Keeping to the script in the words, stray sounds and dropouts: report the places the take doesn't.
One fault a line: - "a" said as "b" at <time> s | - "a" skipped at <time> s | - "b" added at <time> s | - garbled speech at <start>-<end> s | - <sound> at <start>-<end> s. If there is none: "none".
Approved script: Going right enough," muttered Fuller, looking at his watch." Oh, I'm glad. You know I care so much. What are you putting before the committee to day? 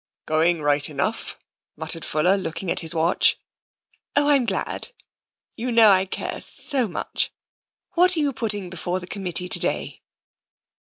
none